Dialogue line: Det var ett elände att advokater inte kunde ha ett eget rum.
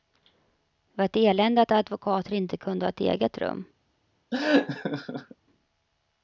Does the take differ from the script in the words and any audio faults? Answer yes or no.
yes